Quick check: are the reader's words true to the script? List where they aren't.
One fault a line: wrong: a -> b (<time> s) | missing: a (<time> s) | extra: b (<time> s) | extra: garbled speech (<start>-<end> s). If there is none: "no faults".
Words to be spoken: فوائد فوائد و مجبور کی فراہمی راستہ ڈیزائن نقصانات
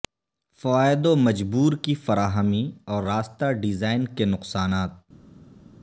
missing: فوائد (1.1 s)
extra: اور (2.9 s)
extra: کے (4.1 s)